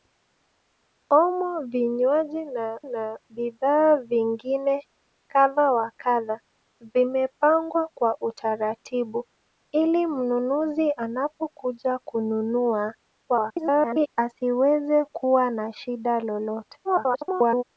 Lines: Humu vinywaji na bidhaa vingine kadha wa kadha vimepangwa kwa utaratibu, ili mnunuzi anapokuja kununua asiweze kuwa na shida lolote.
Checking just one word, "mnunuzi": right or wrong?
right